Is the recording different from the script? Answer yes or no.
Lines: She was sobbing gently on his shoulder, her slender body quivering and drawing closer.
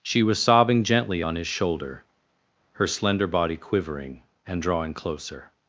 no